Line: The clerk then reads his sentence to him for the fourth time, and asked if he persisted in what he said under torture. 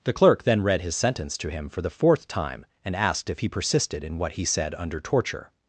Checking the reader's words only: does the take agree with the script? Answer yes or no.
no